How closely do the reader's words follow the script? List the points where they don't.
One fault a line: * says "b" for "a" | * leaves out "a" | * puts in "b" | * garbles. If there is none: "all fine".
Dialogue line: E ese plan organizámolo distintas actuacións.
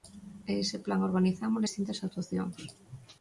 all fine